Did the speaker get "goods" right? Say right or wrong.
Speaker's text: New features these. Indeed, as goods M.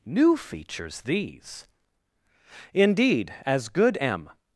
wrong